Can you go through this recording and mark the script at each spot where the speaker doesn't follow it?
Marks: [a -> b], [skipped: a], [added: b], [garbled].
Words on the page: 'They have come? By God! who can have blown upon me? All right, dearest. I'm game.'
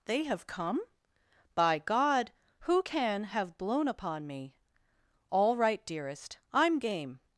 'They have come? By God! who can have blown upon me? All right, dearest. I'm game.'